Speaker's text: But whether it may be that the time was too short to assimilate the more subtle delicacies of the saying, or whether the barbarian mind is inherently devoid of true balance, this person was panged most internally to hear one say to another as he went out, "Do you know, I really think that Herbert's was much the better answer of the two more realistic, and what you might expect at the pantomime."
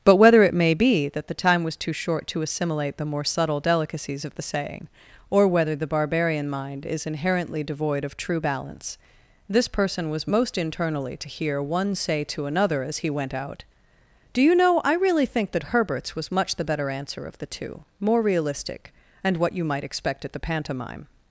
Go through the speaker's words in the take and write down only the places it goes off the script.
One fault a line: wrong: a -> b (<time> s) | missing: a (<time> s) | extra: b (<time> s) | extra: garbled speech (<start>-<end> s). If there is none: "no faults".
missing: panged (10.3 s)